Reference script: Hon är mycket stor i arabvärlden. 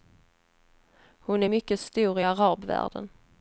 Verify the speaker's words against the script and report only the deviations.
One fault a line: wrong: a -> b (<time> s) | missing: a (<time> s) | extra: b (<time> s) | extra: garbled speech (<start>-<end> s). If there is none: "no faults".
no faults